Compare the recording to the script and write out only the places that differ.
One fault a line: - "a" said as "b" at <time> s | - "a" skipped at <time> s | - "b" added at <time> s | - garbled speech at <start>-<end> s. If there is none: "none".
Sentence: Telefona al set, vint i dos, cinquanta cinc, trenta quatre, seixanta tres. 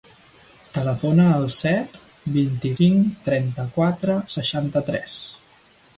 - "dos cinquanta" skipped at 2.7 s